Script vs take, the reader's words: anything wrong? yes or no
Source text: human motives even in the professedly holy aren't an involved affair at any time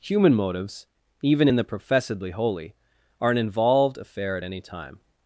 yes